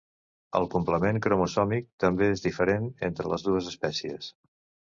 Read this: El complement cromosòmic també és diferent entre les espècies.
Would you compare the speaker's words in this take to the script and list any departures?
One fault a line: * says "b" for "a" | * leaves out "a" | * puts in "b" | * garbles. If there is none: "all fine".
* puts in "dues"